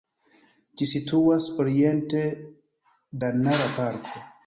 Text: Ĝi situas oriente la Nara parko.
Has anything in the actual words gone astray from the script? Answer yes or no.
no